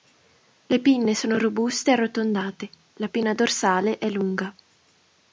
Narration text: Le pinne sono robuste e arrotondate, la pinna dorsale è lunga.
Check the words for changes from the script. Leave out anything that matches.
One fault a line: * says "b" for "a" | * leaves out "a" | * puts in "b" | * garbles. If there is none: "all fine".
all fine